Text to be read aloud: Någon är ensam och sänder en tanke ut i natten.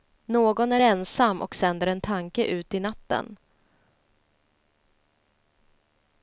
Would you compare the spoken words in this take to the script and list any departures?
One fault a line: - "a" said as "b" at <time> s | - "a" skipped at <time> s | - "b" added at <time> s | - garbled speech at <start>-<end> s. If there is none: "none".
none